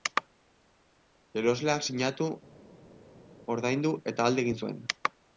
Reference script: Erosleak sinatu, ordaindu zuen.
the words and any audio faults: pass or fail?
fail